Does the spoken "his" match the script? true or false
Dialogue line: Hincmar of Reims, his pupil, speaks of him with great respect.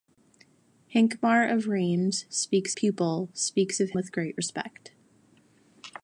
false